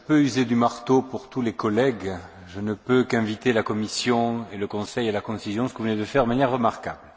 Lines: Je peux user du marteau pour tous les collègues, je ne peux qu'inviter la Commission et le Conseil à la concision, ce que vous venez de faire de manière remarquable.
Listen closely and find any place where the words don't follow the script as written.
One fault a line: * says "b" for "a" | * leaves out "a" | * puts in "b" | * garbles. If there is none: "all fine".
all fine